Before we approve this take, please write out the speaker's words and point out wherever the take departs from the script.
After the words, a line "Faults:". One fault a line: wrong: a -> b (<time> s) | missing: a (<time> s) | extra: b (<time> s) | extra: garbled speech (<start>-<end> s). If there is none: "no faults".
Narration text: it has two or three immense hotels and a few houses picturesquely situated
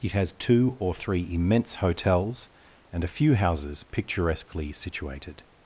it has two or three immense hotels and a few houses picturesquely situated
Faults:
no faults